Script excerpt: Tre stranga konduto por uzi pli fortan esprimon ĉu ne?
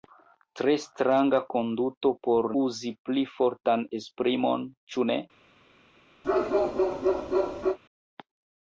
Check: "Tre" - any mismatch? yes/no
no